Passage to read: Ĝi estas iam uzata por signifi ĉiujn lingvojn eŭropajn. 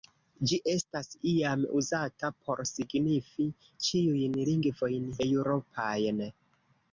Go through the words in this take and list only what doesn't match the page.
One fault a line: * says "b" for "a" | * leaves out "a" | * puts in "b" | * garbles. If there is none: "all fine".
all fine